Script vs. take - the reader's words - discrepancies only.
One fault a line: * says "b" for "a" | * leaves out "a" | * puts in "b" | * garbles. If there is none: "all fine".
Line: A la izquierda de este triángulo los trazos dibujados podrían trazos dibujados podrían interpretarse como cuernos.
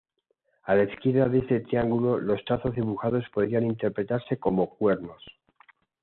* leaves out "trazos dibujados podrían"